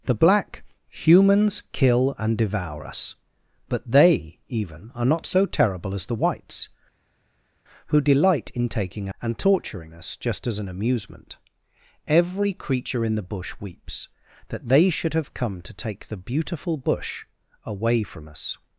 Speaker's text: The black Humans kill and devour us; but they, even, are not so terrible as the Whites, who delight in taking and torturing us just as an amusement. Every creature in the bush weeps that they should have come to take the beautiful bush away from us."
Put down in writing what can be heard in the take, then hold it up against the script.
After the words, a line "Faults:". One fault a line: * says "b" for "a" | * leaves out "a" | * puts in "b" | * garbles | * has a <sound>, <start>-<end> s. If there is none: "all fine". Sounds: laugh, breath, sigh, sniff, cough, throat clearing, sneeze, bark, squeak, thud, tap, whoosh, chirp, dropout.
The black Humans kill and devour us; but they, even, are not so terrible as the Whites, who delight in taking and torturing us just as an amusement. Every creature in the bush weeps that they should have come to take the beautiful bush away from us."
Faults:
all fine